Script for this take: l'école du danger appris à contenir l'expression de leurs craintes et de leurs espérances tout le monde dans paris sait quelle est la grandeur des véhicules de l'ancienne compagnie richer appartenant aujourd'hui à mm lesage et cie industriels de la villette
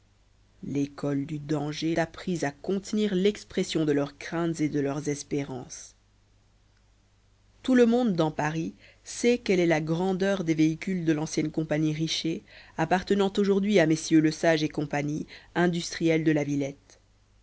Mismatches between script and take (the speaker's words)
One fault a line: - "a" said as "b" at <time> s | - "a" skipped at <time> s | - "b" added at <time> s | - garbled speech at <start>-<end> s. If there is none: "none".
none